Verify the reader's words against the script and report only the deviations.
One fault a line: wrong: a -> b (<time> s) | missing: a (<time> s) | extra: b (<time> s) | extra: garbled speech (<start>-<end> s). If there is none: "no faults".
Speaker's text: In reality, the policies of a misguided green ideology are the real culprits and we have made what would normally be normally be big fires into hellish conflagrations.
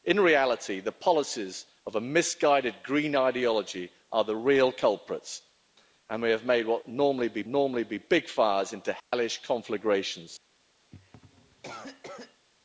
no faults